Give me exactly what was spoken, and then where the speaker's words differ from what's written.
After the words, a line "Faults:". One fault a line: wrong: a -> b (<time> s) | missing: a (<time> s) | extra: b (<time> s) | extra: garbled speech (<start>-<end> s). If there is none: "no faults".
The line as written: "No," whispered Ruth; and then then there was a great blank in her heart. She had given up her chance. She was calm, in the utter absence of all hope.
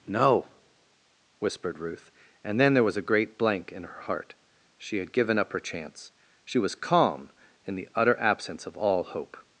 "No," whispered Ruth; and then there was a great blank in her heart. She had given up her chance. She was calm, in the utter absence of all hope.
Faults:
missing: then (2.7 s)